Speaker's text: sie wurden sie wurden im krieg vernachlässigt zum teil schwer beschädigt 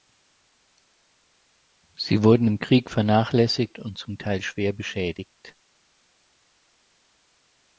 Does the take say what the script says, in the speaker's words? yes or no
no